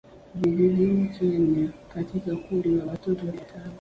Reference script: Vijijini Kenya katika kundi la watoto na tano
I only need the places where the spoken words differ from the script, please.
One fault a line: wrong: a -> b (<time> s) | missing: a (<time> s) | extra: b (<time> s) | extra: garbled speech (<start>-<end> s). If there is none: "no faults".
no faults